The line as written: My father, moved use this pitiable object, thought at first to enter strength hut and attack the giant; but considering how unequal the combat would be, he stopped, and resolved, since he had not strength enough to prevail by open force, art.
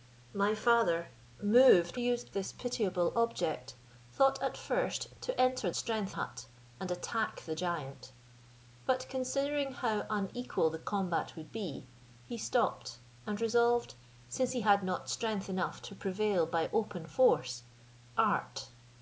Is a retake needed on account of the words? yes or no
no